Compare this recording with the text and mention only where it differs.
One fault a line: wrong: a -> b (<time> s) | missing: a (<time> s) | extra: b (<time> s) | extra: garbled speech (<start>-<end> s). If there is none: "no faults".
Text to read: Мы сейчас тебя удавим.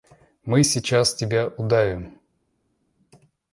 no faults